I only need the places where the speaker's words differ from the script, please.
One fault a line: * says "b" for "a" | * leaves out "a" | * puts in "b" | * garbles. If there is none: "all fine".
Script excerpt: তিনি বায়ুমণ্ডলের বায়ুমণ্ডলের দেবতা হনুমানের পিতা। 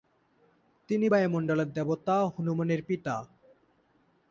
* leaves out "বায়ুমণ্ডলের"